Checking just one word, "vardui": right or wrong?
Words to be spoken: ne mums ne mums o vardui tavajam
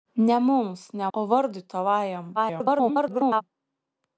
right